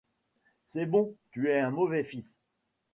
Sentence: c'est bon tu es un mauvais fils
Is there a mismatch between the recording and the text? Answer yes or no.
no